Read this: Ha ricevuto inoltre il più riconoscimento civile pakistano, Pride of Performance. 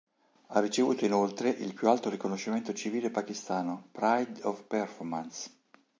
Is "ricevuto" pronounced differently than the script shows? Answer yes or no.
no